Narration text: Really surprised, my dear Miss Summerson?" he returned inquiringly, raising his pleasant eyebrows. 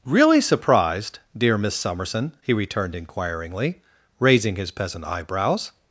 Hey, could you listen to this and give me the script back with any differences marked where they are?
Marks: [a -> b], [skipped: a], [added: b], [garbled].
Really surprised, [skipped: my] dear Miss Summerson?" he returned inquiringly, raising his [pleasant -> peasant] eyebrows.